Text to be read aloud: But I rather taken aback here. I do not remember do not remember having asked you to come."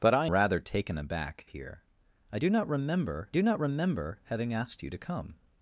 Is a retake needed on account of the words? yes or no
no